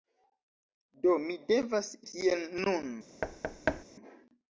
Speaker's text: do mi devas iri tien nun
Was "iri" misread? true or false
true